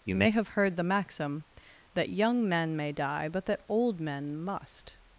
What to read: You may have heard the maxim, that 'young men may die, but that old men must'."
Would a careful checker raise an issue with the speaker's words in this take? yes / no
no